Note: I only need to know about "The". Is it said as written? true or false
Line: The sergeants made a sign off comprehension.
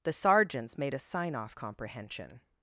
true